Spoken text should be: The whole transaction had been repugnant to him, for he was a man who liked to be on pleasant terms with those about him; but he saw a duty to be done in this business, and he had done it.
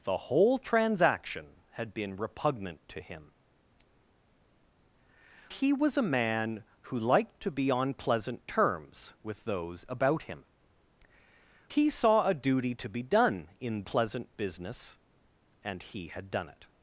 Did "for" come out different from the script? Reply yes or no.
yes